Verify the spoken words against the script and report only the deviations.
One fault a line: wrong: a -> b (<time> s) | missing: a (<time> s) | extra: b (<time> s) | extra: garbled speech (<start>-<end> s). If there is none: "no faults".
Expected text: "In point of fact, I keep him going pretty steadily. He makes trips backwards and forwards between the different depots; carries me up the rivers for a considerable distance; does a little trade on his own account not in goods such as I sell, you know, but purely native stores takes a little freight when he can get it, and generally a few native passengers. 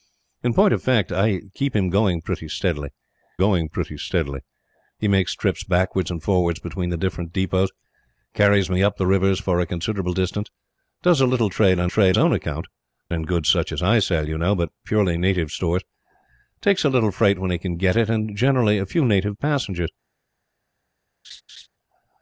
extra: going pretty steadily (3.4 s)
wrong: his -> trade (11.9 s)
missing: not (12.7 s)